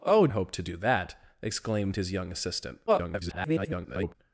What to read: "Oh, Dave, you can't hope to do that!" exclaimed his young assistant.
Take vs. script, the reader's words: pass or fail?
fail